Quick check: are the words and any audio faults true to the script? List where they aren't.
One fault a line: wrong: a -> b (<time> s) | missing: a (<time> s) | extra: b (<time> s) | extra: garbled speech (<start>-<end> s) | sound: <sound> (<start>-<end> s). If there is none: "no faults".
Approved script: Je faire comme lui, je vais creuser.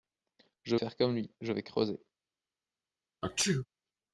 sound: sneeze (3.2-3.7 s)